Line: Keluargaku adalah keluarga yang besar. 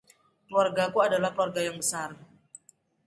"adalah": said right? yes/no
yes